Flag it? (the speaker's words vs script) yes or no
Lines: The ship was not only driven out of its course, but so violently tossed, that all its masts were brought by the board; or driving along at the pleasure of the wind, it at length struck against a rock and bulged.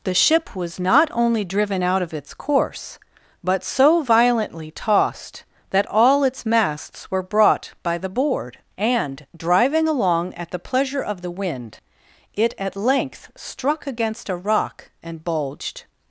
yes